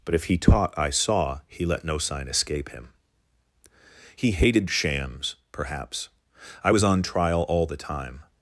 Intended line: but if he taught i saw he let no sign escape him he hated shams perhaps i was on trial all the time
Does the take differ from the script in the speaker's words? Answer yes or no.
no